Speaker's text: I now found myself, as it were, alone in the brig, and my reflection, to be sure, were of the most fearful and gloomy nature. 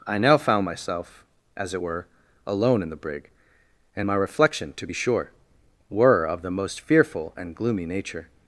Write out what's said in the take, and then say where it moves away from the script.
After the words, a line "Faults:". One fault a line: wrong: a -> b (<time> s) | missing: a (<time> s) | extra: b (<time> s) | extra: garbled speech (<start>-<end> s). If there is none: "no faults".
I now found myself, as it were, alone in the brig, and my reflection, to be sure, were of the most fearful and gloomy nature.
Faults:
no faults